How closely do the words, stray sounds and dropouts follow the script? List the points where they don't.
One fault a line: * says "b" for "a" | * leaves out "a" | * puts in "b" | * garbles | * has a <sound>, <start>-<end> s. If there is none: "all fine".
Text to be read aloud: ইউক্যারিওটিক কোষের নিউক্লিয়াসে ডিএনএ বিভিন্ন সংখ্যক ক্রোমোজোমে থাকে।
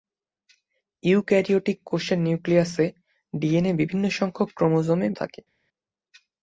all fine